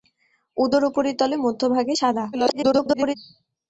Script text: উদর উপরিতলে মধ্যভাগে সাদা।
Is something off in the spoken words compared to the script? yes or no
yes